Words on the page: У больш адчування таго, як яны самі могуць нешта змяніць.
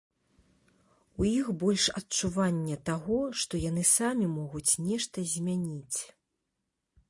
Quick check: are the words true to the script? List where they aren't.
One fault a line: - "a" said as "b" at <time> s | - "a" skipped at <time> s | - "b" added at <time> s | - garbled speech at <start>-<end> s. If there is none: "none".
- "іх" added at 1.3 s
- "як" said as "што" at 3.4 s